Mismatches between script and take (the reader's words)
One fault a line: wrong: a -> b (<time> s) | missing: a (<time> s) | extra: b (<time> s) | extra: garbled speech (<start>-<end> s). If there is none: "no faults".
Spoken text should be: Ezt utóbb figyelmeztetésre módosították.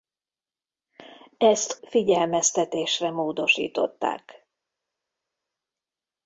missing: utóbb (1.8 s)